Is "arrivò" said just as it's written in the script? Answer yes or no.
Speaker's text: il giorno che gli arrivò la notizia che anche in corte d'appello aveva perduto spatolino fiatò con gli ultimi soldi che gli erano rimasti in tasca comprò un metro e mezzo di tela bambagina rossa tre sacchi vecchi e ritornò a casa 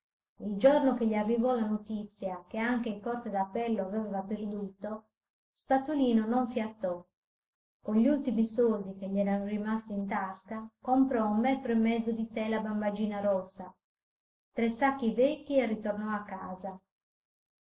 yes